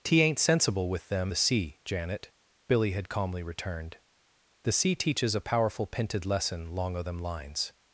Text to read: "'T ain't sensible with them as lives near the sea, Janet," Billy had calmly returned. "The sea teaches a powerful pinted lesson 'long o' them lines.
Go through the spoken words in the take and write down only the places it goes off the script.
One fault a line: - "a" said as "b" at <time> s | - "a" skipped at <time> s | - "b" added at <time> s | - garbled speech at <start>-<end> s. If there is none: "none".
- "as lives near" skipped at 1.3 s